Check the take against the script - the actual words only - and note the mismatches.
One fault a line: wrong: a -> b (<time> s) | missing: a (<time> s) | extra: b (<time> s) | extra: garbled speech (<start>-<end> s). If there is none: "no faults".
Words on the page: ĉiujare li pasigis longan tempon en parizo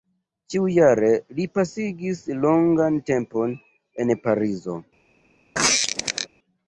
no faults